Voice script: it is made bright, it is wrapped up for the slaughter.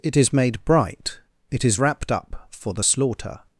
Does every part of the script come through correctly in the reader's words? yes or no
yes